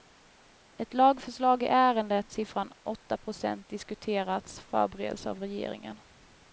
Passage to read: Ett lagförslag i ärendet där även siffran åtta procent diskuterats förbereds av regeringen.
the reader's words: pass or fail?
fail